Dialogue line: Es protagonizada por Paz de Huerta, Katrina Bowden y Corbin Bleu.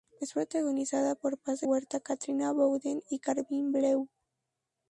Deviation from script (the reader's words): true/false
false